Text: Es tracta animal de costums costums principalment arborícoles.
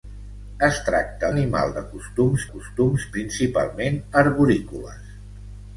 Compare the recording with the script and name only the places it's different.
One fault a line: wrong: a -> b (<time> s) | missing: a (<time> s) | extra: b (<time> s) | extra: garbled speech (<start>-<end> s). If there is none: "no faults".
no faults